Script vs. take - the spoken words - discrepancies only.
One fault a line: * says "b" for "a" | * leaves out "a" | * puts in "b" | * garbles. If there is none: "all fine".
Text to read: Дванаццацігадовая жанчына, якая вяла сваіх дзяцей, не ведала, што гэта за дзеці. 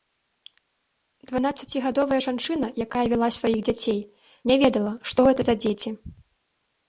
all fine